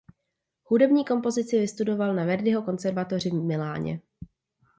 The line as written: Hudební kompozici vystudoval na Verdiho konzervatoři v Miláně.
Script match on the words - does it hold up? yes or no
yes